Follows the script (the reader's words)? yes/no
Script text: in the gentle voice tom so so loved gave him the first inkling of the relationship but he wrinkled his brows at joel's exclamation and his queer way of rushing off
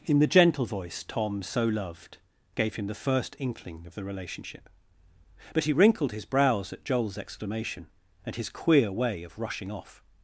no